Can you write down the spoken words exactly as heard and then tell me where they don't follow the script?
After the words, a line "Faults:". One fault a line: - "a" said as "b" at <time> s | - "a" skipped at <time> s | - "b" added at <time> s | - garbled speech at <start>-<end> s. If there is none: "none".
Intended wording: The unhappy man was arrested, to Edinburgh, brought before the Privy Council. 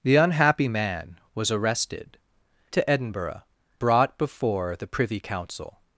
The unhappy man was arrested, to Edinburgh, brought before the Privy Council.
Faults:
none